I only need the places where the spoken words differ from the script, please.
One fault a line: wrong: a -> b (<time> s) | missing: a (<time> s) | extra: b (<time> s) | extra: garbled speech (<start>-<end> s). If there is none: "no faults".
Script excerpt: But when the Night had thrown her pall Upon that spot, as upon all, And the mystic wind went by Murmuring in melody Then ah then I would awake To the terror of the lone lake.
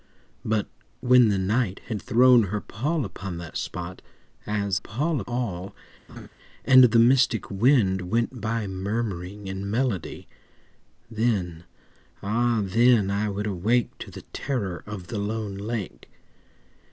wrong: upon -> pall (4.7 s)